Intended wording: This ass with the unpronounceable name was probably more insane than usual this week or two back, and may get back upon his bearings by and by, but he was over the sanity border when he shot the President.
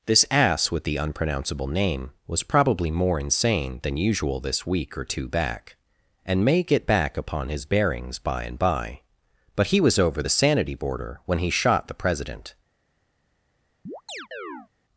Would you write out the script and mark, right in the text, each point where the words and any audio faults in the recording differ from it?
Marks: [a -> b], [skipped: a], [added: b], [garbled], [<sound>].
This ass with the unpronounceable name was probably more insane than usual this week or two back, and may get back upon his bearings by and by, but he was over the sanity border when he shot the President. [chirp]